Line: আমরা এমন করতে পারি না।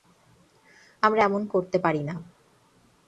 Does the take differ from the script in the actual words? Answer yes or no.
no